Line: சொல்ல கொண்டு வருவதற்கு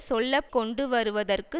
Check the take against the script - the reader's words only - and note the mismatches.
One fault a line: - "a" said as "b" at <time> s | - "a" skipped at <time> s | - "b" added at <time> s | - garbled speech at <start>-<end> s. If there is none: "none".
none